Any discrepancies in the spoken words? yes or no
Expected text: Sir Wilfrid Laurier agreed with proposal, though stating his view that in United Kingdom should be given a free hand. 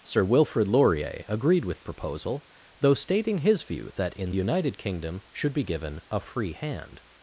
no